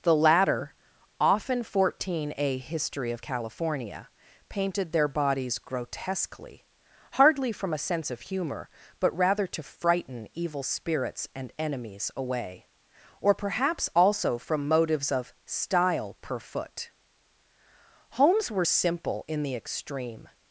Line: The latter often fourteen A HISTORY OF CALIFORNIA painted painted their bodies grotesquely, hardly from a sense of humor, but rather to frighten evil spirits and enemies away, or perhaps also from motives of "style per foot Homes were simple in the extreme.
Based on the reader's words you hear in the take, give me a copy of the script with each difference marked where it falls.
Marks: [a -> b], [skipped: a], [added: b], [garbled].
The latter often fourteen A HISTORY OF CALIFORNIA painted [skipped: painted] their bodies grotesquely, hardly from a sense of humor, but rather to frighten evil spirits and enemies away, or perhaps also from motives of "style per foot Homes were simple in the extreme.